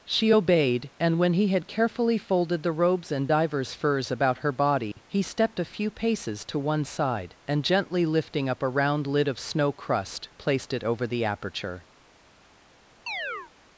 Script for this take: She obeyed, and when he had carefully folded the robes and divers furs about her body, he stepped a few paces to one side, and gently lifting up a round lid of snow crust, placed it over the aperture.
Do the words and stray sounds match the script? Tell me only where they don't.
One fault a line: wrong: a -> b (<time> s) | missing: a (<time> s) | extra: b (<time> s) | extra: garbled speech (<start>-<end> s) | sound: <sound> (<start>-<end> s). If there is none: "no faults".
sound: dropout (4.9-5.0 s)
sound: chirp (13.1-13.5 s)